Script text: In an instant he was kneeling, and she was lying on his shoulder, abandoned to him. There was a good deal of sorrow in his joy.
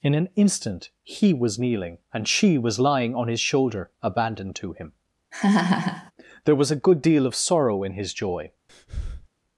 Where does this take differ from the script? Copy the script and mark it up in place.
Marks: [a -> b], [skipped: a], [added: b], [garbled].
In an instant he was kneeling, and she was lying on his shoulder, abandoned to him. There was a good deal of sorrow in his joy.